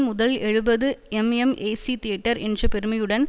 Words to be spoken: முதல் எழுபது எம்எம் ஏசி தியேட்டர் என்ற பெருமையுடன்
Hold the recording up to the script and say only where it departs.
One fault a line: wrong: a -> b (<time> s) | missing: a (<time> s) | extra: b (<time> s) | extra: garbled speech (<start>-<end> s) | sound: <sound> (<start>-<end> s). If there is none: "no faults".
no faults